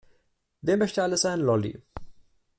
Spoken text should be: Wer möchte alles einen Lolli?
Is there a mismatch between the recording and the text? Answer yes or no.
no